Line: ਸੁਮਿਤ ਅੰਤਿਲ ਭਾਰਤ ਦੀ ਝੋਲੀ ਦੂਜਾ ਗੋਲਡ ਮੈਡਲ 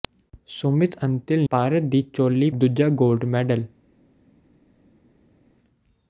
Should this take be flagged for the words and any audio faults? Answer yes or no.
no